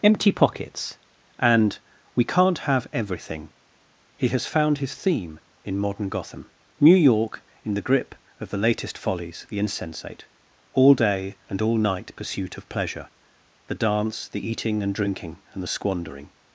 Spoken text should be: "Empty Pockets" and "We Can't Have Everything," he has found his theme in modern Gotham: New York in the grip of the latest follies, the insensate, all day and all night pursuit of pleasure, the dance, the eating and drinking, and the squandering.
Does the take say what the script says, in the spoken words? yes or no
yes